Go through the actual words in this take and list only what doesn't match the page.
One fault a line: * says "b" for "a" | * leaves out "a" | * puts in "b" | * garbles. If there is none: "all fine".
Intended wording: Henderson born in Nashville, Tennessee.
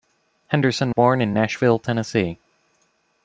all fine